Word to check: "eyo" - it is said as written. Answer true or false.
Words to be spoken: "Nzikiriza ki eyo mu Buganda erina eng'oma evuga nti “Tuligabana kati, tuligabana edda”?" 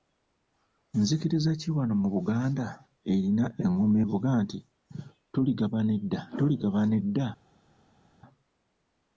false